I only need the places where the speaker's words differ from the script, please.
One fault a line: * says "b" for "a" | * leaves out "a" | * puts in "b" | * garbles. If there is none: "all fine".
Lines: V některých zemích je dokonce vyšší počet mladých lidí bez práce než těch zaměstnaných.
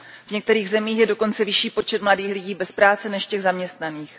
all fine